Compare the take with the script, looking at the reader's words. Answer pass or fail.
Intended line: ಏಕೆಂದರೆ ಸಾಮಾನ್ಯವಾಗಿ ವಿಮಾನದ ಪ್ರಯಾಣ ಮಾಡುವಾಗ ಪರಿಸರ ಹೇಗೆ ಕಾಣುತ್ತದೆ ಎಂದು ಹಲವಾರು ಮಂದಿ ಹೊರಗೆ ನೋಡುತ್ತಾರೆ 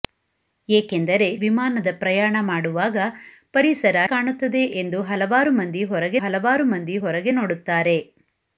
fail